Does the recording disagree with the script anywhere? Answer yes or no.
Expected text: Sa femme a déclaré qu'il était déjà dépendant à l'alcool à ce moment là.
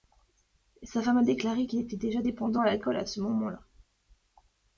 no